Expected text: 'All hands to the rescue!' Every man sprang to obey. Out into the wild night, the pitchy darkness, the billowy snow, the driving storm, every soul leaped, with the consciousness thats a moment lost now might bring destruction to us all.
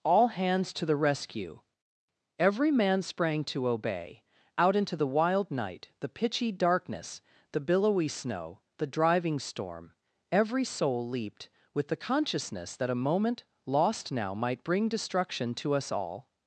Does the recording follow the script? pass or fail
fail